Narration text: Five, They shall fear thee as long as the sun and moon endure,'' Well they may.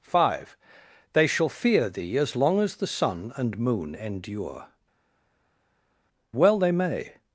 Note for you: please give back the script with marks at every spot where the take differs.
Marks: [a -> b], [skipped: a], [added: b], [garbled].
Five, They shall fear thee as long as the sun and moon endure,'' Well they may.